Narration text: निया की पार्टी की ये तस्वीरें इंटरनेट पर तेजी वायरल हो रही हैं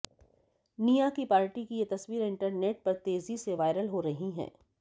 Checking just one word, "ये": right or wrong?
right